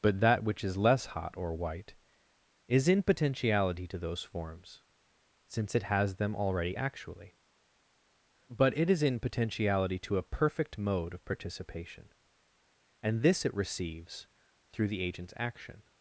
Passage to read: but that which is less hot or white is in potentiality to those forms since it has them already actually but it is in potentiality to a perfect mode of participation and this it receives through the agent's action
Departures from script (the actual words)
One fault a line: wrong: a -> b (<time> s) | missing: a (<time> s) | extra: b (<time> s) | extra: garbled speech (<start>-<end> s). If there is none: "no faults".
no faults